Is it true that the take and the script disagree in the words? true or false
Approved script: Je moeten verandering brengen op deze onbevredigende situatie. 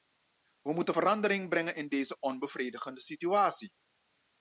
true